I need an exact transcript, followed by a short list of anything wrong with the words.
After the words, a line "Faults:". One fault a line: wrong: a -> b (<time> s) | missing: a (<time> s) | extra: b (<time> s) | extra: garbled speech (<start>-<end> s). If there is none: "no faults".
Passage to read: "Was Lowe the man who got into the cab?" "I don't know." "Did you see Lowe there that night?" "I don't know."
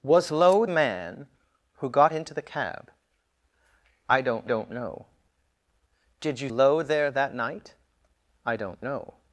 "Was Lowe man who got into the cab?" "I don't don't know." "Did you Lowe there that night?" "I don't know."
Faults:
missing: the (0.7 s)
extra: don't (4.4 s)
missing: see (6.5 s)